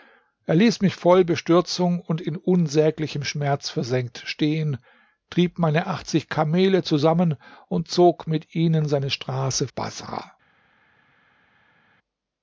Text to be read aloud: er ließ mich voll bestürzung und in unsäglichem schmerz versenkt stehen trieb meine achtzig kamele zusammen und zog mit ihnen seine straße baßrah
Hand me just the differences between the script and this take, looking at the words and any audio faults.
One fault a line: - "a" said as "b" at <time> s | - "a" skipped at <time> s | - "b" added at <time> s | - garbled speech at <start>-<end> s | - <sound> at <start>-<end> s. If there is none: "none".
none